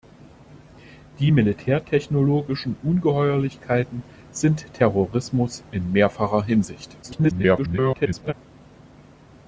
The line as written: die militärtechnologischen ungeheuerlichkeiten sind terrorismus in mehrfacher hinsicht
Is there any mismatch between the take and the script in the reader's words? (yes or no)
yes